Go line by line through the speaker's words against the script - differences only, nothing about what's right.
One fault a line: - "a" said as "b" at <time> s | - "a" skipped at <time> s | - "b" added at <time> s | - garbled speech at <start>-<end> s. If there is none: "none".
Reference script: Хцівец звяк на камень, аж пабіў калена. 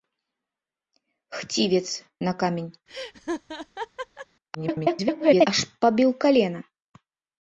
- "звяк" skipped at 1.8 s
- garbled speech at 4.5-5.5 s